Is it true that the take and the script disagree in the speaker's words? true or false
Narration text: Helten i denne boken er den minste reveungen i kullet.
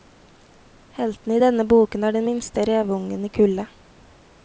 false